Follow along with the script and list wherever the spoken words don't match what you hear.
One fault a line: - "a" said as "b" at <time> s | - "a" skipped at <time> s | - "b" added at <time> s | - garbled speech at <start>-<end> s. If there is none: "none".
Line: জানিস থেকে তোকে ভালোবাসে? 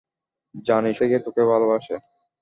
none